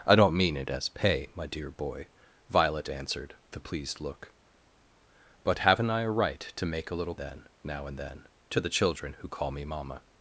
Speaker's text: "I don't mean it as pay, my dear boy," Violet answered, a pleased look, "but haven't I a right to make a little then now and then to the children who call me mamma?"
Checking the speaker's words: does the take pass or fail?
pass